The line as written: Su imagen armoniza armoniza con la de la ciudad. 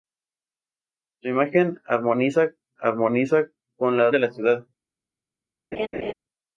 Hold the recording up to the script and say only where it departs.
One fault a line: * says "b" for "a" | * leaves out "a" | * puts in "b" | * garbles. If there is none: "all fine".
all fine